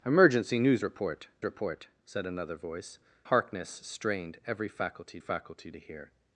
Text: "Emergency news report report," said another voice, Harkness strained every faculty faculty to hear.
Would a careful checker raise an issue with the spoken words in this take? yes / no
no